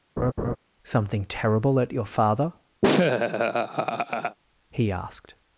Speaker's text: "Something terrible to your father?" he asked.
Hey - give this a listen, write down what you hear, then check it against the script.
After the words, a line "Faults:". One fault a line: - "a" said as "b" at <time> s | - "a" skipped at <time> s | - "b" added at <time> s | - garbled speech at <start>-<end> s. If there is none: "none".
"Something terrible at your father?" he asked.
Faults:
- "to" said as "at" at 1.8 s